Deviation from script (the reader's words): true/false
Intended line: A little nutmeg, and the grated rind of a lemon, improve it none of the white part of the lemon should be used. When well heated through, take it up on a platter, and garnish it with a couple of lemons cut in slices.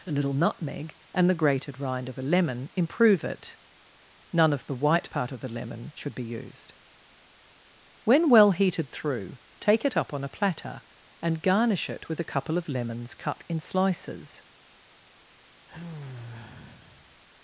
false